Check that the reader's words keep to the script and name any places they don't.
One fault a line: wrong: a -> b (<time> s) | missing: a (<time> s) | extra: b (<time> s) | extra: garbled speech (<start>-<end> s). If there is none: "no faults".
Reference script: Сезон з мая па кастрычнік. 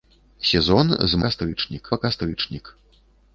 wrong: мая -> кастрычнік (1.3 s)